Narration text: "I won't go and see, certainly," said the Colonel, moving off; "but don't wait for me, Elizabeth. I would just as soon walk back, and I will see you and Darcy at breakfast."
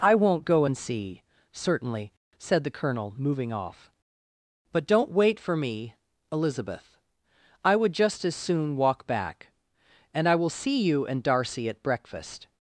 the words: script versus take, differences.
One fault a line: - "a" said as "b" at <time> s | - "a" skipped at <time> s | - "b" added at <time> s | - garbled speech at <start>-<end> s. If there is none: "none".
none